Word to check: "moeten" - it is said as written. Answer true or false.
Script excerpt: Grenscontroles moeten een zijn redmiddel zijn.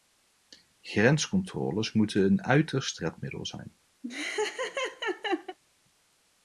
true